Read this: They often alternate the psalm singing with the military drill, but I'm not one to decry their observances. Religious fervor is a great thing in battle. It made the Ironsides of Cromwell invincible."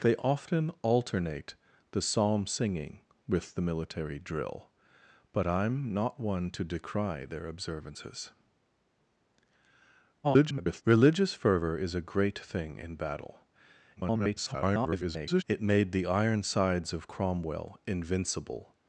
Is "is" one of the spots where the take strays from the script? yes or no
no